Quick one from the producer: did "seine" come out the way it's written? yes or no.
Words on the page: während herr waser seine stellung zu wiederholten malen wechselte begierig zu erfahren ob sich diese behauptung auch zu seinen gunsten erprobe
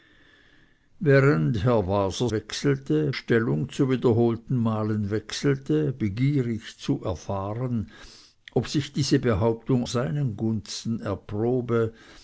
no